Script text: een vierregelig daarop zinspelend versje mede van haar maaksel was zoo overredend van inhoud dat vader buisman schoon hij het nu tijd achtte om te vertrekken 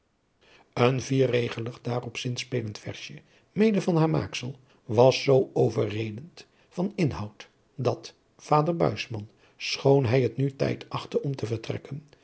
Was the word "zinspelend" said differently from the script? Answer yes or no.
no